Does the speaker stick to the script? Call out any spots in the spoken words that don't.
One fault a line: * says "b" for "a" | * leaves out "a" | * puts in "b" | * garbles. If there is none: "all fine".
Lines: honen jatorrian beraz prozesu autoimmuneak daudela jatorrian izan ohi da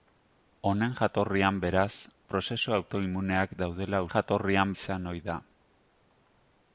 all fine